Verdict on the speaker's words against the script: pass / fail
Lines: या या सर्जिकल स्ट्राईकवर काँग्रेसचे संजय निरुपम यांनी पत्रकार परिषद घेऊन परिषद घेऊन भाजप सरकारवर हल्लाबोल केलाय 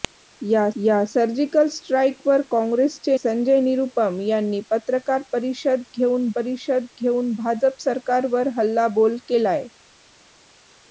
pass